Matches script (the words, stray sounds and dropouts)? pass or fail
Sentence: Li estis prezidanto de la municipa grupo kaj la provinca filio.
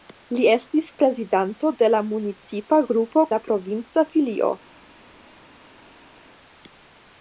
fail